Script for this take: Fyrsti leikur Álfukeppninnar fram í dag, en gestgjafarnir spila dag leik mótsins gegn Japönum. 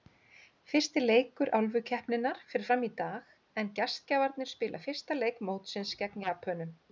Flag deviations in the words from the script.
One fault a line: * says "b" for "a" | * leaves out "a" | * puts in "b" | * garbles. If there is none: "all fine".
* puts in "fer"
* says "fyrsta" for "dag"